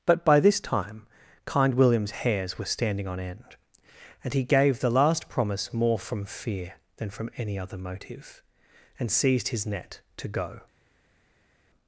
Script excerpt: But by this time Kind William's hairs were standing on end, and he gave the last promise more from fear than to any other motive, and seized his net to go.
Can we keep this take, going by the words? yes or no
no